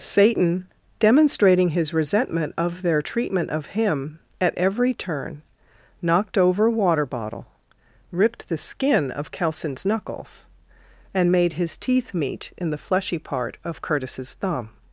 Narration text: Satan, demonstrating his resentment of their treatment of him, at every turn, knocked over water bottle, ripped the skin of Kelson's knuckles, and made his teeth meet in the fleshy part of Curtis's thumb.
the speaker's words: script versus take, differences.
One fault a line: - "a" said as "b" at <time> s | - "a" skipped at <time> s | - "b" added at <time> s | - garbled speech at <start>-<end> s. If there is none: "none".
none